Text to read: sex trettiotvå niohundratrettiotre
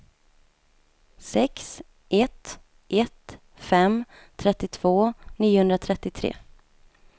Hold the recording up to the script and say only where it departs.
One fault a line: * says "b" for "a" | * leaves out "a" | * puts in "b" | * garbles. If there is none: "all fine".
* puts in "ett ett fem"